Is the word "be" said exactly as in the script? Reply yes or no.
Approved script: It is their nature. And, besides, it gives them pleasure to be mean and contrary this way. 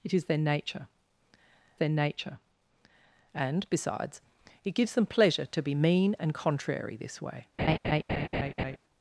yes